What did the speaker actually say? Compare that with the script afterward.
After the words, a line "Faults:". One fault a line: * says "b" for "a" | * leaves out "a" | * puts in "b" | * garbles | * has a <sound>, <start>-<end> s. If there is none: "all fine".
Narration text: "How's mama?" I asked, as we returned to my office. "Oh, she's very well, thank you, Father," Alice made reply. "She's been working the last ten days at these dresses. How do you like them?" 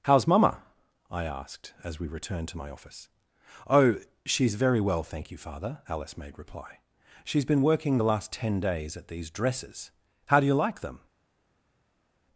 "How's mama?" I asked, as we returned to my office. "Oh, she's very well, thank you, Father," Alice made reply. "She's been working the last ten days at these dresses. How do you like them?"
Faults:
all fine